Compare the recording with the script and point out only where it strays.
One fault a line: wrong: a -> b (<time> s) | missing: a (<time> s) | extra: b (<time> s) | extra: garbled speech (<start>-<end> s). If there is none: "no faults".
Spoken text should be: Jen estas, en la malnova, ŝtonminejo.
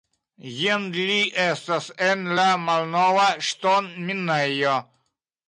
extra: li (0.9 s)